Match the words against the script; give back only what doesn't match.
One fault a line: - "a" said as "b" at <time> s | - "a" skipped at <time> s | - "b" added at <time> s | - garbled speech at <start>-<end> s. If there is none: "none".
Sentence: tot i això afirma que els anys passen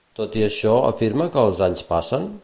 none